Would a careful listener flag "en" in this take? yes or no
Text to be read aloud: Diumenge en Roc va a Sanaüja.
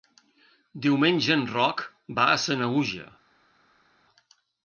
no